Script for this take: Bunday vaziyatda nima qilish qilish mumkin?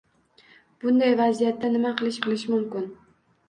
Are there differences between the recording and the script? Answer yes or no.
no